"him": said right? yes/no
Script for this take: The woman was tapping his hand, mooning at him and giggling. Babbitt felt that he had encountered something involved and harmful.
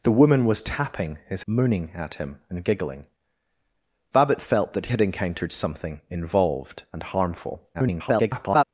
yes